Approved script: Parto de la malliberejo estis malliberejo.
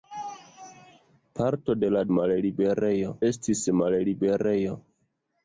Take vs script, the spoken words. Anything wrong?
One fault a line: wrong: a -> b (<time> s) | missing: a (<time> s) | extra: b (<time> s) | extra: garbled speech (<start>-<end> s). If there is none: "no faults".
no faults